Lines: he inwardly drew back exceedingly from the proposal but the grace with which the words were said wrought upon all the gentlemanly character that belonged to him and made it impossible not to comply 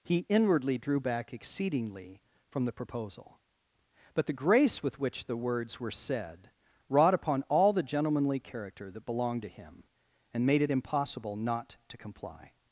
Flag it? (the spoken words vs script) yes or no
no